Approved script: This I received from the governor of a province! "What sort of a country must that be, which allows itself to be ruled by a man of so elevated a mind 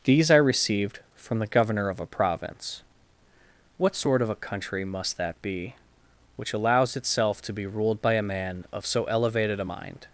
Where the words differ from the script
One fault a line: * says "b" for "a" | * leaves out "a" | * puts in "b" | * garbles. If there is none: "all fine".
* says "These" for "This"